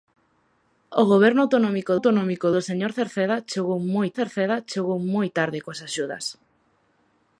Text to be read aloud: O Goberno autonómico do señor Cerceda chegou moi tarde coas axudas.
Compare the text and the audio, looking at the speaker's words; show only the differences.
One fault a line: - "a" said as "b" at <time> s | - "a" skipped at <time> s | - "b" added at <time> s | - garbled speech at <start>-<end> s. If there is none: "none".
- "autonómico" added at 2.0 s
- "Cerceda chegou moi" added at 4.2 s